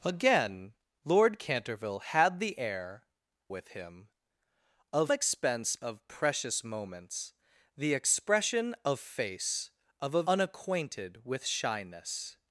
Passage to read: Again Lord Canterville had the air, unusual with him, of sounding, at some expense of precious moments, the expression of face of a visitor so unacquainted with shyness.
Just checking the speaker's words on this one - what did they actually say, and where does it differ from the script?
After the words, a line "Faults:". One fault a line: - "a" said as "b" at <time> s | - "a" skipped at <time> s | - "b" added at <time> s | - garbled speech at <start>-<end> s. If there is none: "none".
Again Lord Canterville had the air, with him, of expense of precious moments, the expression of face of a unacquainted with shyness.
Faults:
- "unusual" skipped at 3.0 s
- "sounding at some" skipped at 5.1 s
- "visitor so" skipped at 10.2 s